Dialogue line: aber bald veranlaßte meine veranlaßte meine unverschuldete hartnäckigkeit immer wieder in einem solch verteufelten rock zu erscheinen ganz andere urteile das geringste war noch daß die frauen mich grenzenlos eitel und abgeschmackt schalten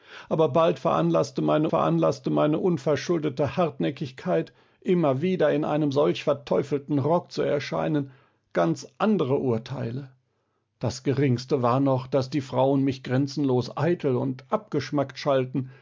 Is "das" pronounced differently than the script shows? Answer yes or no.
no